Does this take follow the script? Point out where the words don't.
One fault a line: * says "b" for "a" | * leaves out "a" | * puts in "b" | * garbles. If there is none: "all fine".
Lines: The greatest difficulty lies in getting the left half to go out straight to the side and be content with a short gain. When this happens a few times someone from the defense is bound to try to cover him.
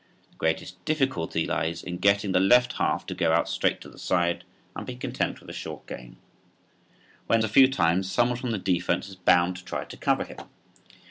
* leaves out "this happens"